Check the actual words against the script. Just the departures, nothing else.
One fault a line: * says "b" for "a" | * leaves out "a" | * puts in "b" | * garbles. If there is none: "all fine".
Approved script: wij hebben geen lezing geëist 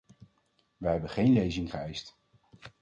all fine